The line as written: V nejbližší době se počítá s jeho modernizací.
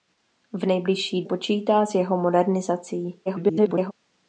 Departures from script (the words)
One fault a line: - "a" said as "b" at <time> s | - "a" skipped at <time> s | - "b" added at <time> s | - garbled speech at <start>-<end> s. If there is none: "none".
- "době se" skipped at 1.2 s
- garbled speech at 3.3-3.9 s